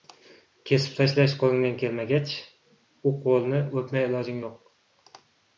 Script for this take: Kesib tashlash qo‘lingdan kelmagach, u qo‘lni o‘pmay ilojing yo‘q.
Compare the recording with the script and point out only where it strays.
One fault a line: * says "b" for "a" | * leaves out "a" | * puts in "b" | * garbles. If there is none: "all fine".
all fine